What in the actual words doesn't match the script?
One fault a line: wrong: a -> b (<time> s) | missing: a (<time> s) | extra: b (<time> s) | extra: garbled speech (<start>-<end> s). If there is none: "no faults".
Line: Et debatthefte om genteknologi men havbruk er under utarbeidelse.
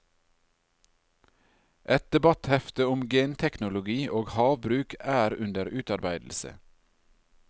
wrong: men -> og (4.2 s)